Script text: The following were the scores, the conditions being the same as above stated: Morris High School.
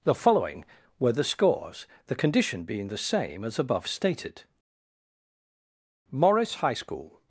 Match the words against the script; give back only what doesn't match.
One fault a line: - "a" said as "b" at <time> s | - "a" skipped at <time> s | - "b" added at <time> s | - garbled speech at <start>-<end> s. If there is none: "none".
- "conditions" said as "condition" at 2.1 s